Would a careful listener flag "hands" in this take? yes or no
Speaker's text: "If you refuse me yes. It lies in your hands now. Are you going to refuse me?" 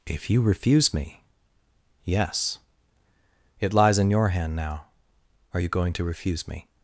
yes